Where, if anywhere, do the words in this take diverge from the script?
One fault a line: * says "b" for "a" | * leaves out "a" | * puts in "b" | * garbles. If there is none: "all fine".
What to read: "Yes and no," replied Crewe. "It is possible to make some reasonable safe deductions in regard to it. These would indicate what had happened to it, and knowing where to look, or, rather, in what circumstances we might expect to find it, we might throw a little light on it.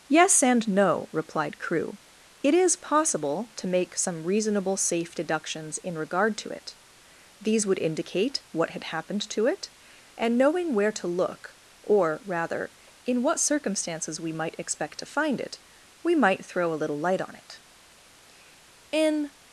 * puts in "In"